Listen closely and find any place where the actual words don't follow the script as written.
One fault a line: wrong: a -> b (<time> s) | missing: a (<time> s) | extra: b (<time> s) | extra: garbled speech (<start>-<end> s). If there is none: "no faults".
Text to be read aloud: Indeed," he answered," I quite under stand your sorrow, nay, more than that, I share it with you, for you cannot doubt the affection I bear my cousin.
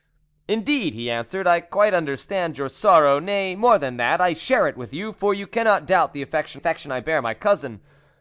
extra: affection (6.6 s)